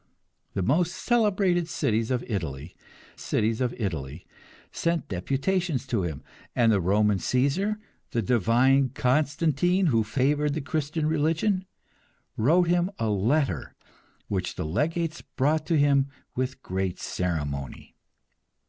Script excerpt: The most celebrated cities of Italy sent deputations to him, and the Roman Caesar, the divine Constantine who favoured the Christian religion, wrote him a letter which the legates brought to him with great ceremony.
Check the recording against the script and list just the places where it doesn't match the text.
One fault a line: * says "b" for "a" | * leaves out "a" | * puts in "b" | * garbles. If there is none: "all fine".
* puts in "cities of Italy"